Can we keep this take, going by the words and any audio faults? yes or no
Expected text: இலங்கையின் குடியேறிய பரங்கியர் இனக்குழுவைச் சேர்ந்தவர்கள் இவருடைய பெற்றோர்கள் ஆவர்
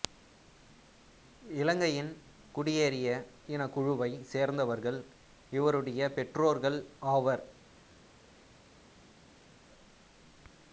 no